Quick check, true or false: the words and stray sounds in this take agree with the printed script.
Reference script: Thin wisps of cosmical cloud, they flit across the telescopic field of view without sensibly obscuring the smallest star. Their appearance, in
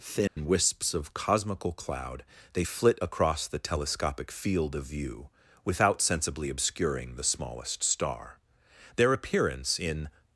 false